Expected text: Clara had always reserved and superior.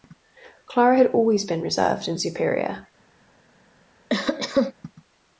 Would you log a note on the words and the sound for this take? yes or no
yes